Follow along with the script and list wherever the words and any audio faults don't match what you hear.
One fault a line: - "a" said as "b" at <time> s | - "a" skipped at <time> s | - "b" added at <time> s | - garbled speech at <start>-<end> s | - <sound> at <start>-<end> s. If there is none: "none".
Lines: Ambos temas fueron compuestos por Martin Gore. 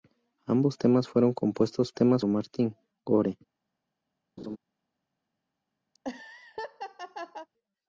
- "por" said as "temas" at 2.0 s
- laugh at 4.4-4.6 s
- laugh at 5.9-7.5 s